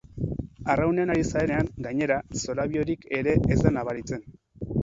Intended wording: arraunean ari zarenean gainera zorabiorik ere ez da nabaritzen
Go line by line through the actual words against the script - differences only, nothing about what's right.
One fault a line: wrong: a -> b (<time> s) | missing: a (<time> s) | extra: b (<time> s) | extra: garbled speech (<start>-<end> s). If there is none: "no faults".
no faults